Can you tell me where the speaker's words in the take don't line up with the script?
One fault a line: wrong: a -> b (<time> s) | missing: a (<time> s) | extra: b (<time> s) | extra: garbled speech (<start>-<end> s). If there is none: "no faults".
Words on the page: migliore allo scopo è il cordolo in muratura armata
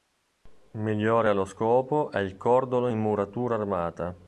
no faults